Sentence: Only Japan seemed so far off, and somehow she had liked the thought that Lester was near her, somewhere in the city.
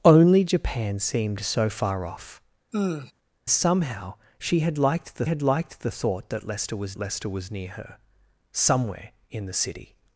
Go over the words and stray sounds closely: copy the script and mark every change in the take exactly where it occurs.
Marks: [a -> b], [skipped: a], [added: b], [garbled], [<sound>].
Only Japan seemed so far off, [skipped: and] [sigh] somehow she had liked the [added: had liked the] thought that Lester was [added: Lester was] near her, somewhere in the city.